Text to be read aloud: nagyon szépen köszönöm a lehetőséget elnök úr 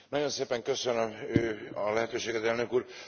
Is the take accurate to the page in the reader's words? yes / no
yes